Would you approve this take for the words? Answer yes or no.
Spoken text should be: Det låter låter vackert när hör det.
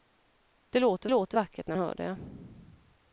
yes